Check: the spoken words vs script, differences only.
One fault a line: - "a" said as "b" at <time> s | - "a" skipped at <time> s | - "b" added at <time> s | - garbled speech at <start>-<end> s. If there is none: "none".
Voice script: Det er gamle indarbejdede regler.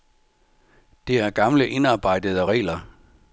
none